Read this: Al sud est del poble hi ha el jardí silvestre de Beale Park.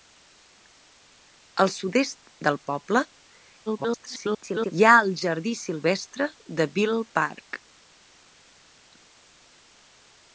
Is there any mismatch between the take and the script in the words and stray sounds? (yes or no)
yes